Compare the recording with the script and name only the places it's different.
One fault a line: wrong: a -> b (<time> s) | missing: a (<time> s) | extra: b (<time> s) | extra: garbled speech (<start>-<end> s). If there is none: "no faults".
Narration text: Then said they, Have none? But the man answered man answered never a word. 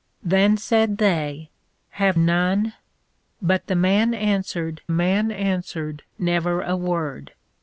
no faults